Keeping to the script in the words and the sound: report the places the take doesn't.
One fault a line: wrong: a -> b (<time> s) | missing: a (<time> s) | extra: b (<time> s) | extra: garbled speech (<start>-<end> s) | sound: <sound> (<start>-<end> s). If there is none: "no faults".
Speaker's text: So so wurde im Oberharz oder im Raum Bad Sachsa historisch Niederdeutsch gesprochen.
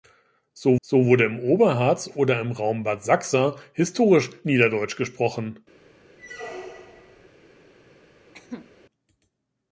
sound: squeak (6.2-7.3 s)
sound: cough (8.3-8.7 s)